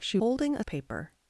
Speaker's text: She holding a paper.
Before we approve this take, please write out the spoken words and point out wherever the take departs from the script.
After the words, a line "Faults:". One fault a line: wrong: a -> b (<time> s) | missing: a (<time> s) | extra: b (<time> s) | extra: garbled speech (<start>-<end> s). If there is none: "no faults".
She holding a paper.
Faults:
no faults